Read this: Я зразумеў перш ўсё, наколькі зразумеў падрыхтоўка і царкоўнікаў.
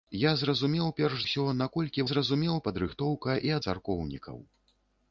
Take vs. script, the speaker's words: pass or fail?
pass